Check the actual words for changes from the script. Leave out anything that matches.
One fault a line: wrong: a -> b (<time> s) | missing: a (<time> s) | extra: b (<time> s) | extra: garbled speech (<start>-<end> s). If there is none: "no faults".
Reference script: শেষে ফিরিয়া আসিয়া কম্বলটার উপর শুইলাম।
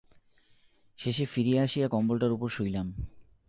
no faults